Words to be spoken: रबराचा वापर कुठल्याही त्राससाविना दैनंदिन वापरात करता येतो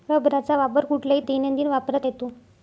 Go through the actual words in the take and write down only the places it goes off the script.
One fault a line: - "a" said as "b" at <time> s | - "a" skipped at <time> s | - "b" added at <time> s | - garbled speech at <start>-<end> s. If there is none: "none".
- "त्राससाविना" skipped at 1.2 s
- "करता" skipped at 2.0 s